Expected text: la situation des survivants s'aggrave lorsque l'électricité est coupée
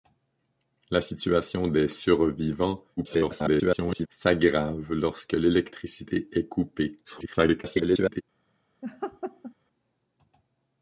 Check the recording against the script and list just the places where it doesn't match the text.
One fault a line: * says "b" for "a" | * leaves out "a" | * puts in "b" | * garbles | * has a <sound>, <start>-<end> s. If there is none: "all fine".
* garbles
* garbles
* has a laugh, 8.8-9.5 s